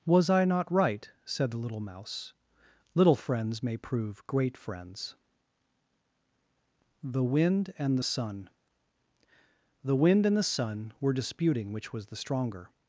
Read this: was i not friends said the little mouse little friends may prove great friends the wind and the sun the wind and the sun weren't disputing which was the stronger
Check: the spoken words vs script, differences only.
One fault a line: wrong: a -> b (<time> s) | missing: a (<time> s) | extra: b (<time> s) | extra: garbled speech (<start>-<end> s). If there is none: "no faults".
wrong: friends -> right (0.7 s)
wrong: weren't -> were (11.0 s)